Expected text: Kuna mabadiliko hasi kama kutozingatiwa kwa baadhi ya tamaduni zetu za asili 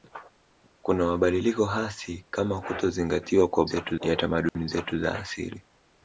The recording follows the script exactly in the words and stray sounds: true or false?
false